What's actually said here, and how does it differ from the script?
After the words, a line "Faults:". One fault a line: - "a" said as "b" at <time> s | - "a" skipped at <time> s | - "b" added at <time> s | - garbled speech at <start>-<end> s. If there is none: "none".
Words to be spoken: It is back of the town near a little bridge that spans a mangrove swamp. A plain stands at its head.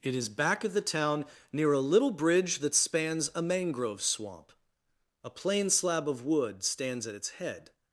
It is back of the town near a little bridge that spans a mangrove swamp. A plain slab of wood stands at its head.
Faults:
- "slab of wood" added at 5.7 s